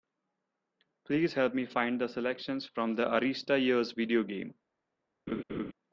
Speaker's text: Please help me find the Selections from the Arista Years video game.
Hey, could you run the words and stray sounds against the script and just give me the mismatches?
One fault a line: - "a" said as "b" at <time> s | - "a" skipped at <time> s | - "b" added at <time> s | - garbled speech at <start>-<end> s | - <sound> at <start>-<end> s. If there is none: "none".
- laugh at 5.3-5.7 s